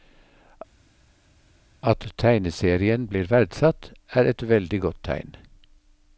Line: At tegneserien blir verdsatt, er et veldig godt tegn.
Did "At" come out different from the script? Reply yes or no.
no